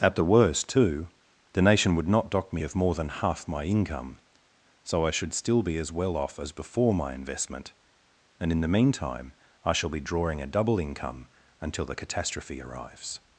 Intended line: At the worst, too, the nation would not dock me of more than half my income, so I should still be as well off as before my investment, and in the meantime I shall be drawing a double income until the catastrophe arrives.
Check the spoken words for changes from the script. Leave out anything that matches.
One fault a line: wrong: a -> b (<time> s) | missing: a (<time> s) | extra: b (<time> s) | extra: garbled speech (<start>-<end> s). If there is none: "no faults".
no faults